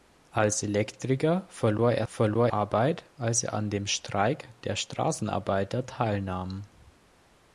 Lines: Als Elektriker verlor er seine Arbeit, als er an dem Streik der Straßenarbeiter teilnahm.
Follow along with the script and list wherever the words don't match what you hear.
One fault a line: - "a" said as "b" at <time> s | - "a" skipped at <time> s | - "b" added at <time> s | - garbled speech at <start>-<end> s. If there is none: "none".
- "seine" said as "verlor" at 2.1 s